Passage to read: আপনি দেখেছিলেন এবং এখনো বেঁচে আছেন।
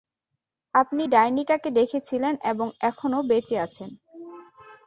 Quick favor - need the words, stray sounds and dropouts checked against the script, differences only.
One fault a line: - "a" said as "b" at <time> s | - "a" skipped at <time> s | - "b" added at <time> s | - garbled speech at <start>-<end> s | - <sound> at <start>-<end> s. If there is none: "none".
- "ডাইনিটাকে" added at 1.0 s